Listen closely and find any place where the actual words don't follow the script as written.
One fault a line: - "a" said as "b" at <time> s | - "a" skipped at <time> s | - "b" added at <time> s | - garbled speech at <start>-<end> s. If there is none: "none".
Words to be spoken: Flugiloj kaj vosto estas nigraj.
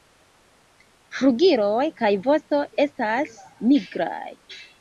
none